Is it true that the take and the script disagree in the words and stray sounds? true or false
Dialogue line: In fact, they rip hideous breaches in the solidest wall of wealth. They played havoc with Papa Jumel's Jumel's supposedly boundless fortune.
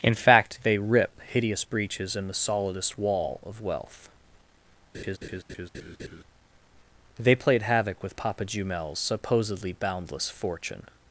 true